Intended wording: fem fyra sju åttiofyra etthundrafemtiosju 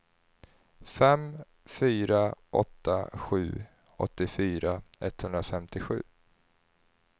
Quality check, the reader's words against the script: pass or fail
fail